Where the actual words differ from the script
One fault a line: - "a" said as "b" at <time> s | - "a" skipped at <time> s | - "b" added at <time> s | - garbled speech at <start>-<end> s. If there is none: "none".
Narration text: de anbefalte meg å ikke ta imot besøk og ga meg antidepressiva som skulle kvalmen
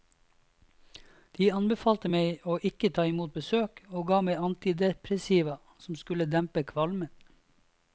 - "dempe" added at 6.4 s